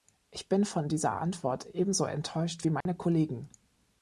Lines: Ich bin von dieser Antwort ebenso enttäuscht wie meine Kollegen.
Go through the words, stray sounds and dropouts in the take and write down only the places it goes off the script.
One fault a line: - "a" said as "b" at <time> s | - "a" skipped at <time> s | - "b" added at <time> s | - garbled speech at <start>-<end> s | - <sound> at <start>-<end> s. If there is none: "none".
- dropout at 2.8-2.9 s